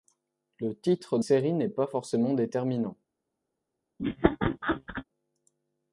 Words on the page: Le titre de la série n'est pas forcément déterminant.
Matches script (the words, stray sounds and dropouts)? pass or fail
fail